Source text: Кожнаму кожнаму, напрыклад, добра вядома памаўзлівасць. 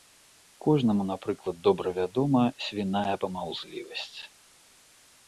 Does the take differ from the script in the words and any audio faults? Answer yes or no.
yes